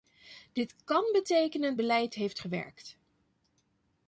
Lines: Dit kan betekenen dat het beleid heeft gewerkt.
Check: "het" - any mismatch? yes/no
yes